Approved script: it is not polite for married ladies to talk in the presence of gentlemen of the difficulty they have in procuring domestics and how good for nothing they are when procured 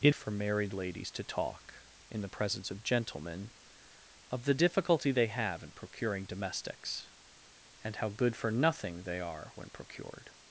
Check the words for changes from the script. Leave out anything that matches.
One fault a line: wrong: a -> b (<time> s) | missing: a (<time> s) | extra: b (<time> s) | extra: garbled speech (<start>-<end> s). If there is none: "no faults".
missing: is not polite (0.1 s)